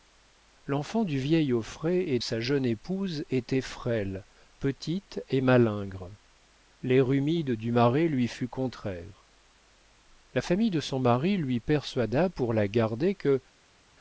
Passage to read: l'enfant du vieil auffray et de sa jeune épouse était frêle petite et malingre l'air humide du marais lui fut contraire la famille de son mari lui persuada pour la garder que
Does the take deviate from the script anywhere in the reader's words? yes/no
yes